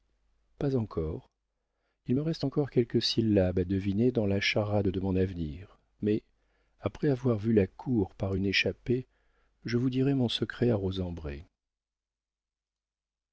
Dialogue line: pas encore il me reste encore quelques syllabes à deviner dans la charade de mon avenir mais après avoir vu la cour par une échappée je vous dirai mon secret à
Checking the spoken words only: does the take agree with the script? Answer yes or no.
yes